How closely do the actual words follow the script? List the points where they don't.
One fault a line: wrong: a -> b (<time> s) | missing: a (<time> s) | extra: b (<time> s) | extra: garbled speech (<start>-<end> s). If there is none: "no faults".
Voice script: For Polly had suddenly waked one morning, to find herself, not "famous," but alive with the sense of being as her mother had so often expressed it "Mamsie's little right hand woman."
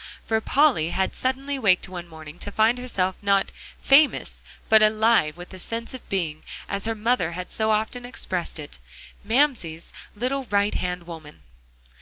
no faults